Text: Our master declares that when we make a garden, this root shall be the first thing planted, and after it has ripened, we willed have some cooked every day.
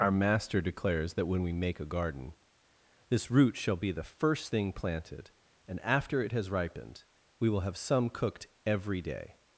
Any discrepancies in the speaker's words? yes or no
yes